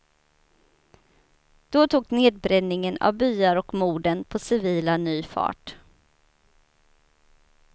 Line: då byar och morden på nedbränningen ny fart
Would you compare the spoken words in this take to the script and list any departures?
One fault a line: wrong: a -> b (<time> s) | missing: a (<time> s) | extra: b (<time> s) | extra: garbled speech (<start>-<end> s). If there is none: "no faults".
extra: tog nedbränningen av (1.9 s)
wrong: nedbränningen -> civila (4.4 s)